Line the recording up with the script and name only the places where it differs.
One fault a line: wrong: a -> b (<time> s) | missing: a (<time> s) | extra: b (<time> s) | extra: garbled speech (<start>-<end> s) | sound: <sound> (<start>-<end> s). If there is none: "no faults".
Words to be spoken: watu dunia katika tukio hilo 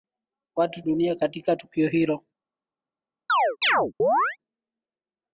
sound: chirp (3.3-4.4 s)